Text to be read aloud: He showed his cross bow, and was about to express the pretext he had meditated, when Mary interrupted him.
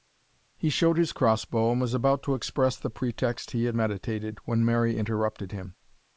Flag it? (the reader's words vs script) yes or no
no